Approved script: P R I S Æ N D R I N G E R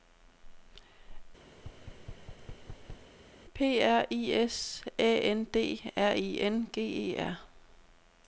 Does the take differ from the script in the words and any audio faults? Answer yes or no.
yes